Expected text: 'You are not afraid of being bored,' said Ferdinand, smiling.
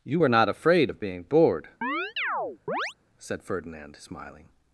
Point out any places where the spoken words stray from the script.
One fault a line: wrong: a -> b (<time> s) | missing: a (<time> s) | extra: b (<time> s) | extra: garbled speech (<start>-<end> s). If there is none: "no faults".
wrong: are -> were (0.2 s)